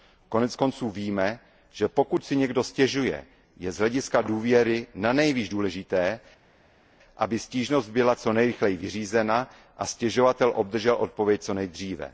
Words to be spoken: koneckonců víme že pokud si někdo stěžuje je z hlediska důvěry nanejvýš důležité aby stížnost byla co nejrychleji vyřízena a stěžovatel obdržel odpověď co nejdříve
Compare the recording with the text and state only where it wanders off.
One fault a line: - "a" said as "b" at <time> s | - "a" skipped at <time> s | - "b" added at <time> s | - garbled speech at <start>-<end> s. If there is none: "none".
none